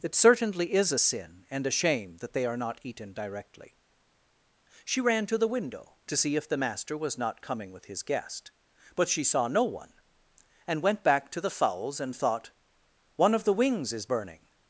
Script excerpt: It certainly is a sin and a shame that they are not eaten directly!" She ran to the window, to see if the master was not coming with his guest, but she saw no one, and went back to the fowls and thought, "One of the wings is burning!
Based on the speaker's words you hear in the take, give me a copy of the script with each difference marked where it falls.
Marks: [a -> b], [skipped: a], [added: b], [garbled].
It certainly is a sin and a shame that they are not eaten directly!" She ran to the window, to see if the master was not coming with his guest, but she saw no one, and went back to the fowls and thought, "One of the wings is burning!